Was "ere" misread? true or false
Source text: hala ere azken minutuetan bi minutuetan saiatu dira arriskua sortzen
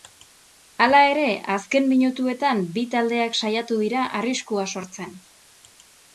false